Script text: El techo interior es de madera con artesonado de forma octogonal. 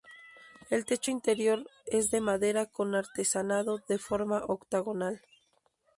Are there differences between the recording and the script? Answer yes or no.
no